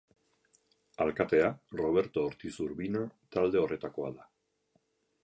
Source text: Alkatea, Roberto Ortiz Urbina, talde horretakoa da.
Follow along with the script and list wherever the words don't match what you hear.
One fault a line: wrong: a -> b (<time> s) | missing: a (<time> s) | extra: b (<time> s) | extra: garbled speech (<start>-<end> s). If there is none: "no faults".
no faults